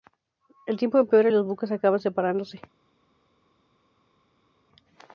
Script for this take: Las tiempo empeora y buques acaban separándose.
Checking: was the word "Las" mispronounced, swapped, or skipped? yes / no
yes